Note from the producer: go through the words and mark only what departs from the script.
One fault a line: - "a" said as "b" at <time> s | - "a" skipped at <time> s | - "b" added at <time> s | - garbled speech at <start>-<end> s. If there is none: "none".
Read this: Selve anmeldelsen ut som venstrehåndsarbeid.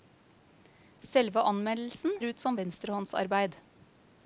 none